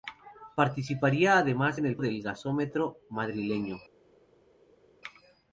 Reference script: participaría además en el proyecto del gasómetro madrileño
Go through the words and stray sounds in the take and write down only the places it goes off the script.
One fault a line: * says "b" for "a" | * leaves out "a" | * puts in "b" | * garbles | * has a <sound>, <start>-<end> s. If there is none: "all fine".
* leaves out "proyecto"